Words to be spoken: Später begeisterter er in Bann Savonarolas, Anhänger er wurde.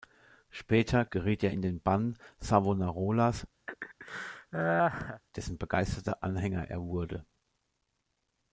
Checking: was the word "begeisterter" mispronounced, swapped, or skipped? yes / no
yes